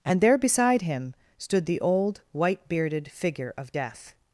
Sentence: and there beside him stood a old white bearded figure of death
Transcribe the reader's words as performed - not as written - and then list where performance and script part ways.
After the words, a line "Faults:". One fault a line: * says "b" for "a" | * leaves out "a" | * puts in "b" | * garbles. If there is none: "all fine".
and there beside him stood the old white bearded figure of death
Faults:
* says "the" for "a"